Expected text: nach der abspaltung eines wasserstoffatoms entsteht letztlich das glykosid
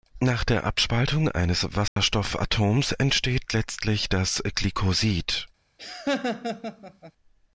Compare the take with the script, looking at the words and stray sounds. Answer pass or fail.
fail